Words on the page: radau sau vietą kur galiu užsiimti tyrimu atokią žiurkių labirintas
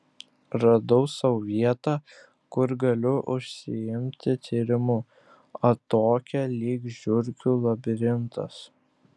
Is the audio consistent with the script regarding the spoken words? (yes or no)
no